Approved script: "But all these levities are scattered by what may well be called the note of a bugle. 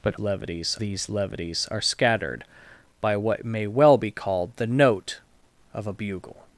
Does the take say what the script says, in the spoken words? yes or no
no